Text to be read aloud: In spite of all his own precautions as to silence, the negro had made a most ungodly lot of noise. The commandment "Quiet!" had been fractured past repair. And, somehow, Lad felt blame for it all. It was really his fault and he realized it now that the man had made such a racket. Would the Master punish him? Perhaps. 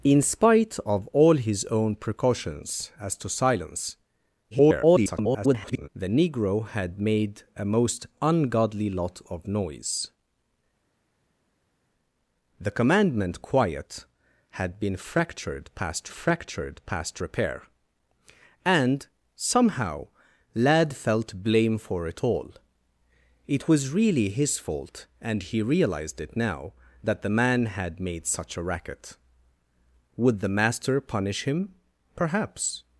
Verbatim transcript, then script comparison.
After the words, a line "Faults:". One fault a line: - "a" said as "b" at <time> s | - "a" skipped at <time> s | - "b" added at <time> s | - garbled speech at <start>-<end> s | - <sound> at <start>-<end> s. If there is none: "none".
In spite of all his own precautions as to silence, [garbled] the negro had made a most ungodly lot of noise. The commandment "Quiet!" had been fractured past fractured past repair. And, somehow, Lad felt blame for it all. It was really his fault and he realized it now that the man had made such a racket. Would the Master punish him? Perhaps.
Faults:
- garbled speech at 4.5-5.9 s
- "fractured past" added at 16.1 s